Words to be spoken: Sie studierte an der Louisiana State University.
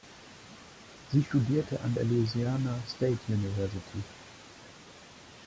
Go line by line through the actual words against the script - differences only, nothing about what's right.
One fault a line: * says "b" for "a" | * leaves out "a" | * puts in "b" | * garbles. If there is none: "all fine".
all fine